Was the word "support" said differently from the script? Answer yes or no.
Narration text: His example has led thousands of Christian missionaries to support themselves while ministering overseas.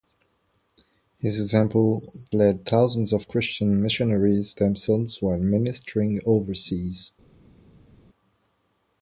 yes